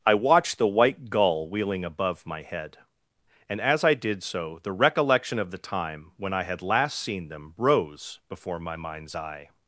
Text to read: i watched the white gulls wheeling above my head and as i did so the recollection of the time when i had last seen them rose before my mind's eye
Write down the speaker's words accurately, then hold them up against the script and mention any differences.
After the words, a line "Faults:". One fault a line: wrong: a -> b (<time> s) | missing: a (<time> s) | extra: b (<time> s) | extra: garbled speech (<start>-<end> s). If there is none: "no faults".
i watched the white gull wheeling above my head and as i did so the recollection of the time when i had last seen them rose before my mind's eye
Faults:
wrong: gulls -> gull (1.1 s)